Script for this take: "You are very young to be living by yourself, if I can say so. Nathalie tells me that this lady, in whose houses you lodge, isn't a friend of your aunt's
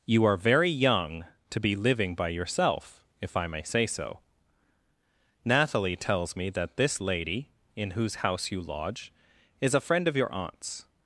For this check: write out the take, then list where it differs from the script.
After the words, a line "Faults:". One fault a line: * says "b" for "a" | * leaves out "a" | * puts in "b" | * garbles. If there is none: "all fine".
"You are very young to be living by yourself, if I may say so. Nathalie tells me that this lady, in whose house you lodge, is a friend of your aunt's
Faults:
* says "may" for "can"
* says "house" for "houses"
* says "is" for "isn't"